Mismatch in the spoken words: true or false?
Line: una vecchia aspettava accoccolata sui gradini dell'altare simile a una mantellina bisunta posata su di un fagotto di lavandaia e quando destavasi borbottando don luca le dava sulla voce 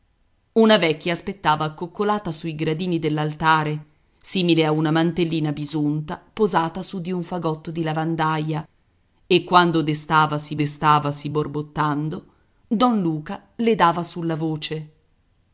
true